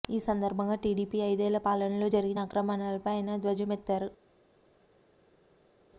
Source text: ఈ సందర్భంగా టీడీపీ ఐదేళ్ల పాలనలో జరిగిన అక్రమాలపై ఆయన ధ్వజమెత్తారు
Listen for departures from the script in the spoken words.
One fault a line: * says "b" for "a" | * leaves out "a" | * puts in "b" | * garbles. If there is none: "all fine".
all fine